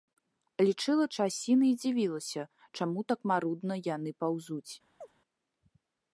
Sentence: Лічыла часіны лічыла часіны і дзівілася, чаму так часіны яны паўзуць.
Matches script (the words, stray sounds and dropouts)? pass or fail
fail